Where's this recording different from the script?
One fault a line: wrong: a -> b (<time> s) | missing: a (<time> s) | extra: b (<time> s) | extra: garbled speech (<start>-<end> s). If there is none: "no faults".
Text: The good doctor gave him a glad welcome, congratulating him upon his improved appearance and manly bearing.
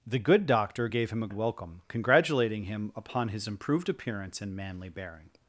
missing: glad (1.3 s)